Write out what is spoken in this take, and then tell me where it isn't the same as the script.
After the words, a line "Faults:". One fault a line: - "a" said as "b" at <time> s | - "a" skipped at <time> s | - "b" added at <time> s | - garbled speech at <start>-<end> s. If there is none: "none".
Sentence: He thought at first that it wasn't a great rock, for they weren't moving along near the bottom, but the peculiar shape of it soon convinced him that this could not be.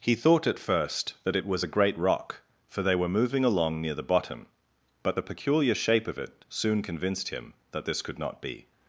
He thought at first that it was a great rock, for they were moving along near the bottom, but the peculiar shape of it soon convinced him that this could not be.
Faults:
- "wasn't" said as "was" at 1.4 s
- "weren't" said as "were" at 2.9 s